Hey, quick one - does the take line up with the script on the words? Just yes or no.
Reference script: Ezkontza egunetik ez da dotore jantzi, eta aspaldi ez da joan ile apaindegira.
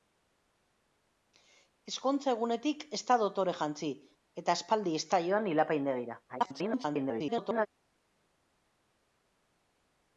no